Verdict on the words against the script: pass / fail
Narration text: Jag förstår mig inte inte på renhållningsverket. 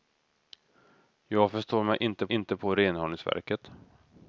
pass